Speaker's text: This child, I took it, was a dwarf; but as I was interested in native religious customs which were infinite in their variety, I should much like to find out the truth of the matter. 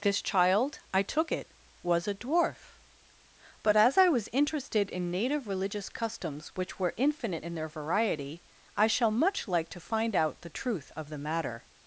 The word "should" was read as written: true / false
false